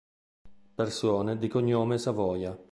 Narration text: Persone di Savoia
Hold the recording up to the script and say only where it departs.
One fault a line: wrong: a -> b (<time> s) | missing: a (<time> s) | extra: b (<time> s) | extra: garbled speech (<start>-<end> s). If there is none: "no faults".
extra: cognome (1.5 s)